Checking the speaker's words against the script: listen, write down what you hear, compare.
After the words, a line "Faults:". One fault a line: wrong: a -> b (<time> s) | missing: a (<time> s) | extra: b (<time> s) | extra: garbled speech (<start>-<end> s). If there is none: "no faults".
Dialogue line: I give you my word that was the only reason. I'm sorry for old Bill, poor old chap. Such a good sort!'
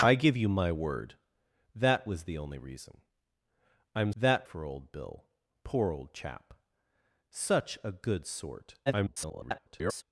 I give you my word that was the only reason. I'm that for old Bill, poor old chap. Such a good sort!' [garbled]
Faults:
wrong: sorry -> that (4.2 s)
extra: garbled speech (8.9-10.0 s)